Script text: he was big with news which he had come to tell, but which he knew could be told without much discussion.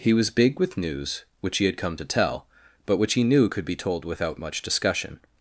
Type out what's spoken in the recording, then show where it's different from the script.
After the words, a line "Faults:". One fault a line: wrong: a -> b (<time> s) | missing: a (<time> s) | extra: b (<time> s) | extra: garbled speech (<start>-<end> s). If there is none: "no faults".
he was big with news which he had come to tell, but which he knew could be told without much discussion.
Faults:
no faults